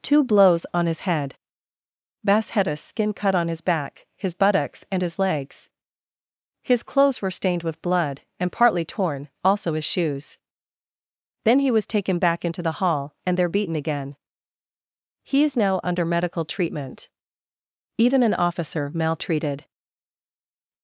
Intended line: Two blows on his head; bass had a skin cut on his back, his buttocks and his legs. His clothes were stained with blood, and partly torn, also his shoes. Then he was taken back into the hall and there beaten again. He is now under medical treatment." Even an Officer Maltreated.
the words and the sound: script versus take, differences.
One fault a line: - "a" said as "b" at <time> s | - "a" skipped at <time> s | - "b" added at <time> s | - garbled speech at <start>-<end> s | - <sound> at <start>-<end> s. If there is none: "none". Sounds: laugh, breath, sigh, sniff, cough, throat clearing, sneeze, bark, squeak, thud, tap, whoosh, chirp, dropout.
none